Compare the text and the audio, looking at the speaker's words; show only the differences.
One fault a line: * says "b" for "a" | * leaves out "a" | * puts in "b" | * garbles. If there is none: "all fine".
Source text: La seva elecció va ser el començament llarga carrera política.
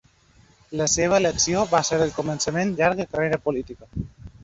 all fine